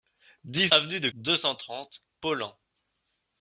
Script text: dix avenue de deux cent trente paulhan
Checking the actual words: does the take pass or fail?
pass